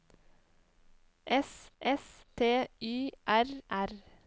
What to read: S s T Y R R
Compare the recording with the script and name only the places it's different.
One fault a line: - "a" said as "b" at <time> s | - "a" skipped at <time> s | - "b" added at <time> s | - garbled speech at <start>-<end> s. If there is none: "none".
none